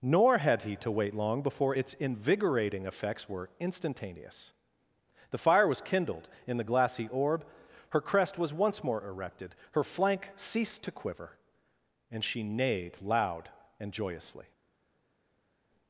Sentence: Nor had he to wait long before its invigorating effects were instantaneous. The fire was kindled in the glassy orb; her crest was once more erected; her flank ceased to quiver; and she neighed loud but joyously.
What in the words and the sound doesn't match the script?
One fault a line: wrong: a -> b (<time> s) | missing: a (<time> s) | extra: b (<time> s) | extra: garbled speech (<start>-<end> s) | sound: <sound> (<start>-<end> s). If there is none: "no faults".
wrong: but -> and (13.8 s)